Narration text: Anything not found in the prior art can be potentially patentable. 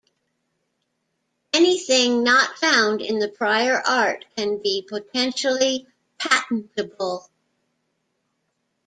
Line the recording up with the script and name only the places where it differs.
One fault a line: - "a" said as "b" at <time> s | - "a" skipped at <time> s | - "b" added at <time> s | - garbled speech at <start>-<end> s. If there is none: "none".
none